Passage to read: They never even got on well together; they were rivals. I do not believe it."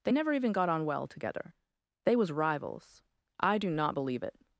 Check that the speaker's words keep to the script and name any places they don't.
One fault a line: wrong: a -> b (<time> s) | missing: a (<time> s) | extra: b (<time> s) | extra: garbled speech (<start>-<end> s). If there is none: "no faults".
wrong: were -> was (2.1 s)